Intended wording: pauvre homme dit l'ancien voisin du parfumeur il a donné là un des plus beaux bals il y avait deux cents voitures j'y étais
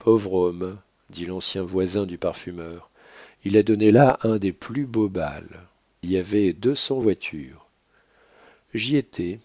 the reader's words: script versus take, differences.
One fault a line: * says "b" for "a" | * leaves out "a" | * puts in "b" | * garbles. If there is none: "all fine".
* leaves out "il"